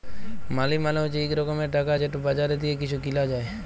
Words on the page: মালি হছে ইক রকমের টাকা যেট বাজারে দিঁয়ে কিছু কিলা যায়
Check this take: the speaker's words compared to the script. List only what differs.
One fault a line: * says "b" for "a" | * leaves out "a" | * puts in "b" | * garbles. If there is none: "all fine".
* puts in "মালে"